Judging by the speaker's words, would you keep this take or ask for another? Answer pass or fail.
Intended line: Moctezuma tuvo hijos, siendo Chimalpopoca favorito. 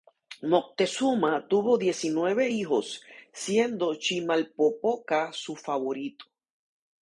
fail